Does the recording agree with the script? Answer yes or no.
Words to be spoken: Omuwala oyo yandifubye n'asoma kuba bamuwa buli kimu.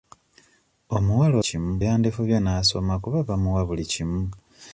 no